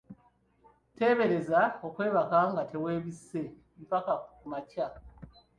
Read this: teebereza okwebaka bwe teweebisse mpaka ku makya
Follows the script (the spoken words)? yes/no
no